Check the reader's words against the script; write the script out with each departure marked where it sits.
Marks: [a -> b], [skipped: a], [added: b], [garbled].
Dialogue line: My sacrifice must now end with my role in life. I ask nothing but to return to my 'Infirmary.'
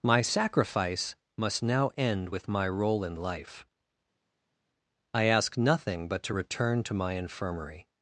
My sacrifice must now end with my role in life. I ask nothing but to return to my 'Infirmary.'